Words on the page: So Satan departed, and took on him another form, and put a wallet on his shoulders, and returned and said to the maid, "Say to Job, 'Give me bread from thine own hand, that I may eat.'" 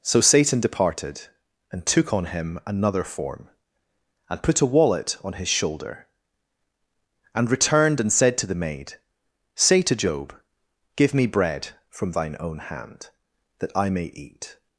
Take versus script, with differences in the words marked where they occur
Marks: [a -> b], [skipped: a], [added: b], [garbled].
So Satan departed, and took on him another form, and put a wallet on his [shoulders, -> shoulder] and returned and said to the maid, "Say to Job, 'Give me bread from thine own hand, that I may eat.'"